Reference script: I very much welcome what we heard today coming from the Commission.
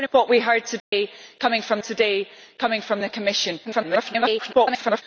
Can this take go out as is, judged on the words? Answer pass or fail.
fail